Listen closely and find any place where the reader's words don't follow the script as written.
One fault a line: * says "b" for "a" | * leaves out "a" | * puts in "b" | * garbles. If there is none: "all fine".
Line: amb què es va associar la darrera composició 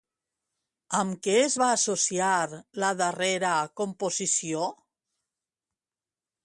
all fine